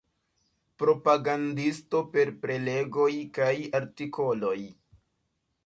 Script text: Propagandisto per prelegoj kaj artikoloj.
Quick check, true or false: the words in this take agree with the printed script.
true